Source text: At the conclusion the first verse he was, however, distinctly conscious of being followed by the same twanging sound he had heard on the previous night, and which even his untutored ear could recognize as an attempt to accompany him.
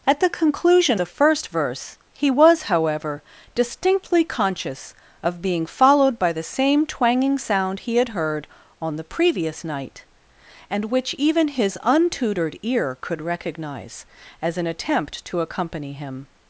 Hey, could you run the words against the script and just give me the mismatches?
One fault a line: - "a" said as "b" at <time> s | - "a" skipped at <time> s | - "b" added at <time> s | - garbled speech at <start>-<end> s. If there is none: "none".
none